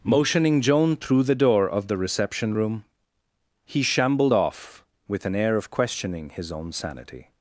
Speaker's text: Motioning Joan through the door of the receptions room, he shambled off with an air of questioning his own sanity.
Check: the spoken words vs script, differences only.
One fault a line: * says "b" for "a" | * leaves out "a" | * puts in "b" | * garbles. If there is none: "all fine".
* says "reception" for "receptions"